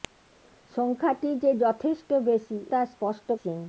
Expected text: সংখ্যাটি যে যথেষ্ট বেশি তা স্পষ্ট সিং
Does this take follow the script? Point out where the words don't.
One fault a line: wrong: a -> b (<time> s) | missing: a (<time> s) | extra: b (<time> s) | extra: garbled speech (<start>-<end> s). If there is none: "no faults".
no faults